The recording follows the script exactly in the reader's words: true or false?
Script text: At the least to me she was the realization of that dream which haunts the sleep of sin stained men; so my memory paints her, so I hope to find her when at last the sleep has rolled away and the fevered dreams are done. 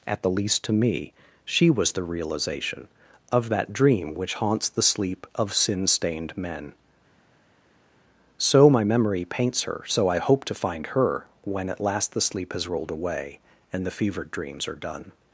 true